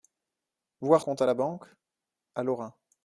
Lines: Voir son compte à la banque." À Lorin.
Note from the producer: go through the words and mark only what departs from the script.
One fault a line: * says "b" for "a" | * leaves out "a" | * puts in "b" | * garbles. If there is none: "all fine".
* leaves out "son"